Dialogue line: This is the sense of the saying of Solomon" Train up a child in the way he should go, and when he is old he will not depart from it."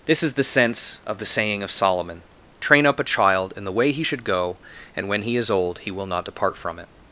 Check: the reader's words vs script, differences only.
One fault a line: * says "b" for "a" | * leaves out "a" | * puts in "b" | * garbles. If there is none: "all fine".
all fine